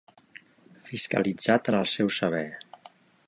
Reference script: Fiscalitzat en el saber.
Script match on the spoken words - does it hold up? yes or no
no